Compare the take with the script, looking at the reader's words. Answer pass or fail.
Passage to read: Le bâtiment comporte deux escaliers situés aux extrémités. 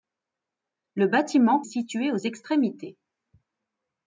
fail